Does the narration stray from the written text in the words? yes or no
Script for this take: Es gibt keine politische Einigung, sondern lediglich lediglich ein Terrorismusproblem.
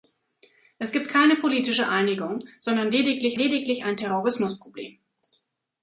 no